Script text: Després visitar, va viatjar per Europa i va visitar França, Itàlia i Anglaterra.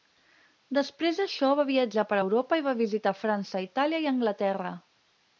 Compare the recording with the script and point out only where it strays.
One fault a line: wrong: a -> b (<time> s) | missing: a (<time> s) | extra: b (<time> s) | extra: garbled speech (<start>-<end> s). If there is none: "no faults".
wrong: visitar -> d'això (1.2 s)